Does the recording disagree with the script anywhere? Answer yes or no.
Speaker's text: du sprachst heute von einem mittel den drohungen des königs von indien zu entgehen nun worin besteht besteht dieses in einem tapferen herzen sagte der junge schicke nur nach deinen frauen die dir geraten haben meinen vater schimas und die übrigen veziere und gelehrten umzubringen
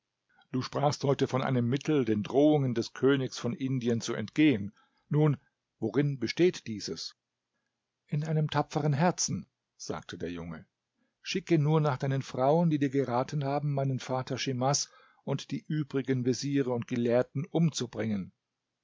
yes